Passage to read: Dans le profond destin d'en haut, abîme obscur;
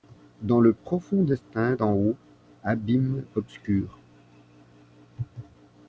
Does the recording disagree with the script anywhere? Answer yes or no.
no